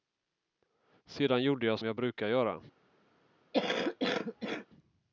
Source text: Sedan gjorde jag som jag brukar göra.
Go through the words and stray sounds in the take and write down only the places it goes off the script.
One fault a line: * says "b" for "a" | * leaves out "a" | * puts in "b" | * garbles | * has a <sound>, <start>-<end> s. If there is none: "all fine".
* leaves out "som"
* has a cough, 3.5-4.7 s